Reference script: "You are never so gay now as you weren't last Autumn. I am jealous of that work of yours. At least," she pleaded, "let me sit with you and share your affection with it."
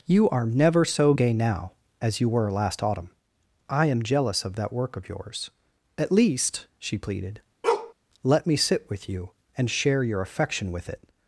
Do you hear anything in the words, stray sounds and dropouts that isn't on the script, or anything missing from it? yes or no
yes